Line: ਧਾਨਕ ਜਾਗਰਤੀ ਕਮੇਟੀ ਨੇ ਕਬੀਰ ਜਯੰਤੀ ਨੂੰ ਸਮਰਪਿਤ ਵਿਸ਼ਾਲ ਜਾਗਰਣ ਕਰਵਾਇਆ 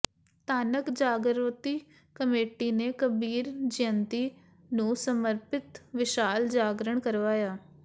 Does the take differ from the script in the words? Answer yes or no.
no